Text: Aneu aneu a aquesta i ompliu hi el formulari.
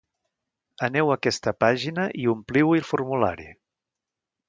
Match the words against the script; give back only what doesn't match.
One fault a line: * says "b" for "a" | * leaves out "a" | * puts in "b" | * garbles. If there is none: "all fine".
* leaves out "aneu"
* puts in "pàgina"